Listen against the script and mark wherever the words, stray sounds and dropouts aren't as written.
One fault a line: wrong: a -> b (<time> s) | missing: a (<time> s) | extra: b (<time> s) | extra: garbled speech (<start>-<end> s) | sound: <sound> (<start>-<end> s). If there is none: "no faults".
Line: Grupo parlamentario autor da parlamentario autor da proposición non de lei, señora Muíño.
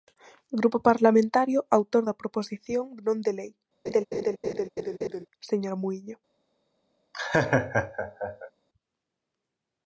missing: parlamentario autor da (2.2 s)
sound: laugh (3.9-5.3 s)
sound: laugh (7.1-8.5 s)